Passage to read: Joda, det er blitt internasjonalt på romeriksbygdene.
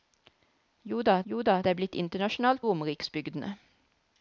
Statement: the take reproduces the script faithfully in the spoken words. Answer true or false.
false